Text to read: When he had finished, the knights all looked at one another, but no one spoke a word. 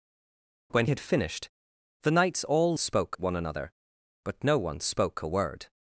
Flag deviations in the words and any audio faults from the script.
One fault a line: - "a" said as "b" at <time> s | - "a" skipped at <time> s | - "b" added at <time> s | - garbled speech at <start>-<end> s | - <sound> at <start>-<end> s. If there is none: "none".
- "he" skipped at 0.8 s
- "looked" said as "spoke" at 2.7 s